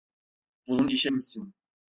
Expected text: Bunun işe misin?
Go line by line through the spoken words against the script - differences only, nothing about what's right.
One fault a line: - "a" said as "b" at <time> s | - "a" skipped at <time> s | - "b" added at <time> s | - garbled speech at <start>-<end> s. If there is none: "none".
none